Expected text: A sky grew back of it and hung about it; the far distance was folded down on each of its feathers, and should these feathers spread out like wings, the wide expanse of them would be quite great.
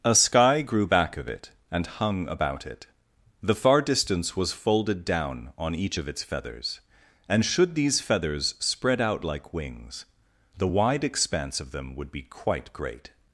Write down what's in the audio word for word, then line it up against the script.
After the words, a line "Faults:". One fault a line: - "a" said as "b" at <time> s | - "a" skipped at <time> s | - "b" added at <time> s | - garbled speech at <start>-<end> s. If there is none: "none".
A sky grew back of it and hung about it; the far distance was folded down on each of its feathers, and should these feathers spread out like wings, the wide expanse of them would be quite great.
Faults:
none